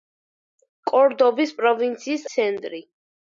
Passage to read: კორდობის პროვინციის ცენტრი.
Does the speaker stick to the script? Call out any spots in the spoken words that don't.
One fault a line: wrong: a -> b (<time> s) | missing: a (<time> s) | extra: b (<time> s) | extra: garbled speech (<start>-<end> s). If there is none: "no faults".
no faults